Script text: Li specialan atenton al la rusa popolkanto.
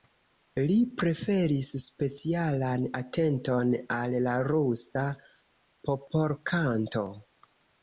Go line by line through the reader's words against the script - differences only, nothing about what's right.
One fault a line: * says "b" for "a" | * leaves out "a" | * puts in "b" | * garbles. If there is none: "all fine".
* puts in "preferis"